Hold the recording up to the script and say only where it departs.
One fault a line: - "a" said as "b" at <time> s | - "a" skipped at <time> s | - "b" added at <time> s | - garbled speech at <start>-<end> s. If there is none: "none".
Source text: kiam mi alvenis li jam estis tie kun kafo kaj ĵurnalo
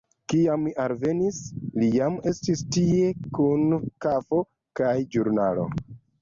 none